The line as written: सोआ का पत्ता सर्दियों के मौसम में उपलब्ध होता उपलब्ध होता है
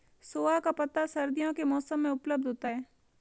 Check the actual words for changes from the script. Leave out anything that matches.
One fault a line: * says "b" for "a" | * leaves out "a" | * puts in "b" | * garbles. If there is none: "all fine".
* leaves out "उपलब्ध होता"